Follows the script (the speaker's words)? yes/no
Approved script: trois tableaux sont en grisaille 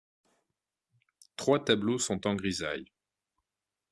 yes